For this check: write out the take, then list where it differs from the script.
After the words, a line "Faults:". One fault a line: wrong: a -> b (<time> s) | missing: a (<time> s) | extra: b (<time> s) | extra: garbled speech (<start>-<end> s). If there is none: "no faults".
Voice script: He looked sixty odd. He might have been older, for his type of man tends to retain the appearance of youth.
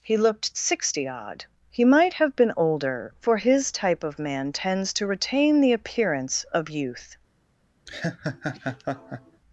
He looked sixty odd. He might have been older, for his type of man tends to retain the appearance of youth.
Faults:
no faults